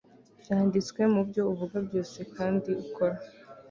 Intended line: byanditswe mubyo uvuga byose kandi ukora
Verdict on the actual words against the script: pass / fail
pass